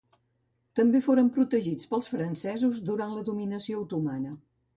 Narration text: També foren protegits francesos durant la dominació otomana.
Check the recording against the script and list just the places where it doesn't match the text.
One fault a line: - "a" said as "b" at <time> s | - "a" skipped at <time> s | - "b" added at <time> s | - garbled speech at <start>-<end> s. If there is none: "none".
- "pels" added at 1.9 s